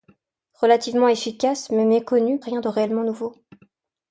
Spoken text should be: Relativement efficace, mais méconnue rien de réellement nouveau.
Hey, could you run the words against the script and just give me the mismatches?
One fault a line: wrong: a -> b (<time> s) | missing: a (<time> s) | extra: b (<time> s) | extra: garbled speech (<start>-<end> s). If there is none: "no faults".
no faults